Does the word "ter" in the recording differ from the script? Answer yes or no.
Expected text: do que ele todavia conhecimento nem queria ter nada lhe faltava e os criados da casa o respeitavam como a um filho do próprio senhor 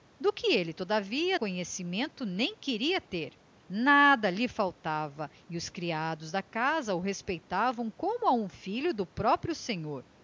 no